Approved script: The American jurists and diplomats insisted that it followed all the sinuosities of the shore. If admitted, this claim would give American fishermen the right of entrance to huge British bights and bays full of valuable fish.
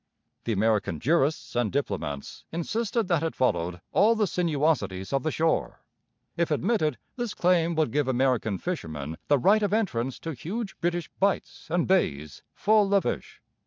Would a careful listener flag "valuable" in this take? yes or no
yes